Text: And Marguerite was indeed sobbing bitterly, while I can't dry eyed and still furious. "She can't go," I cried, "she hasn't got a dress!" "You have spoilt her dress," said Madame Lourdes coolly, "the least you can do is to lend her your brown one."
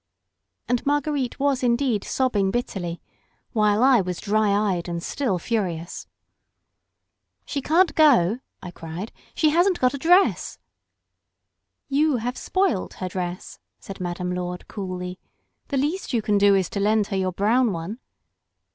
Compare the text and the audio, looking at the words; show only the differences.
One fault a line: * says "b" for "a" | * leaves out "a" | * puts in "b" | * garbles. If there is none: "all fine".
* says "was" for "can't"